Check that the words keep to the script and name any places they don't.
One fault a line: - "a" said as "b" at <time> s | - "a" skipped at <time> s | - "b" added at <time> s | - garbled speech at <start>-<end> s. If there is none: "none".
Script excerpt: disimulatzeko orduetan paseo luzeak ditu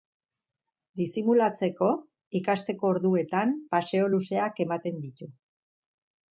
- "ikasteko" added at 2.4 s
- "ematen" added at 4.7 s